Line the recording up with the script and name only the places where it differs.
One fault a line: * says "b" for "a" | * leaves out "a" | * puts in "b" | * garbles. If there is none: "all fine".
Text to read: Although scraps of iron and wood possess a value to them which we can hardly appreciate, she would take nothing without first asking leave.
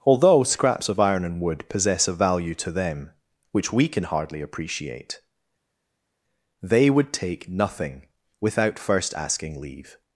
* says "they" for "she"